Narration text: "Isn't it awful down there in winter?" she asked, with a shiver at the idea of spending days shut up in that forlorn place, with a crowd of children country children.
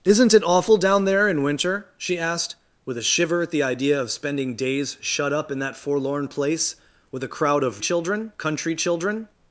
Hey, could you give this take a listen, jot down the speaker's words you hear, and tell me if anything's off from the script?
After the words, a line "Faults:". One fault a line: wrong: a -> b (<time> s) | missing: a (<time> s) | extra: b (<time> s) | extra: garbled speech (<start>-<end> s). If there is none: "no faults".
"Isn't it awful down there in winter?" she asked, with a shiver at the idea of spending days shut up in that forlorn place, with a crowd of children country children.
Faults:
no faults